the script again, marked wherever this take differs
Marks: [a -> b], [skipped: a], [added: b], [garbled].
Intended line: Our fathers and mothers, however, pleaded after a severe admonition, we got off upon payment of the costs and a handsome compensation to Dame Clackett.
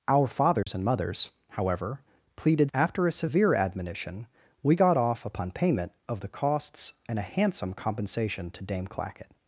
Our fathers and mothers, however, pleaded after a severe admonition, we got off upon payment of the costs and a handsome compensation to Dame Clackett.